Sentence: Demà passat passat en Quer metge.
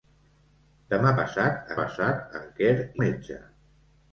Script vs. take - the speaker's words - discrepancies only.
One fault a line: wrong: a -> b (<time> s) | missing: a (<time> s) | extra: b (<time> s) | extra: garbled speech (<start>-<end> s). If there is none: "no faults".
no faults